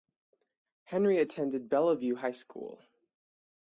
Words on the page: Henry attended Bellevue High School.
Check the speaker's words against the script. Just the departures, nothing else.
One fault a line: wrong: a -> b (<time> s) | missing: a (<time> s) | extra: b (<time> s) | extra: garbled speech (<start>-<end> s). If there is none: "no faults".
no faults